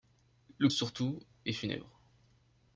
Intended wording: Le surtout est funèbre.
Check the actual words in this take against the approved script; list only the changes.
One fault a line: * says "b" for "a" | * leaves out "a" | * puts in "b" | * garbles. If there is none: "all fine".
all fine